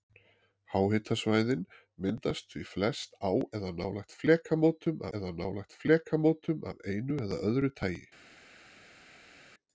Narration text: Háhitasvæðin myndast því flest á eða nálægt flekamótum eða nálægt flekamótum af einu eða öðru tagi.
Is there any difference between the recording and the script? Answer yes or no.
no